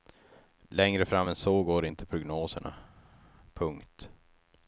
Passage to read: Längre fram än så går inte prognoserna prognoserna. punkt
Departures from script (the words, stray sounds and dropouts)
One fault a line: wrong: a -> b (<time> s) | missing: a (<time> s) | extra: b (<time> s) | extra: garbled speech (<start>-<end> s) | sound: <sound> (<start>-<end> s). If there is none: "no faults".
missing: prognoserna (2.7 s)